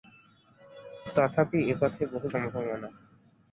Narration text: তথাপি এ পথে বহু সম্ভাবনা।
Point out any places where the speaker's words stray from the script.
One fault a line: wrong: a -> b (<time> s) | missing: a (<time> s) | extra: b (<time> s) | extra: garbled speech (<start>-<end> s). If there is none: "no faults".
no faults